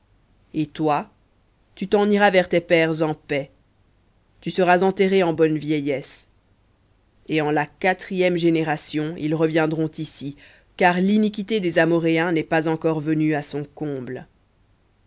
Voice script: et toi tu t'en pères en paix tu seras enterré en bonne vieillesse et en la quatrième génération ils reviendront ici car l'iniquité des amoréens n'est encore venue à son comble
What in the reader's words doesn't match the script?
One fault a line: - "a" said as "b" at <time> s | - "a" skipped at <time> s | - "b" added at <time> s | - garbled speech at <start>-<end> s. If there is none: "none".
- "iras vers tes" added at 2.1 s
- "pas" added at 12.4 s